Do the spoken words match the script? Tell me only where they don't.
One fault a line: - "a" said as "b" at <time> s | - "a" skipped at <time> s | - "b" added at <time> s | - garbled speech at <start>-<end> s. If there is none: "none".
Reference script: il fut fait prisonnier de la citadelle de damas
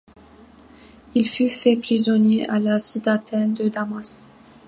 - "de" said as "à" at 2.5 s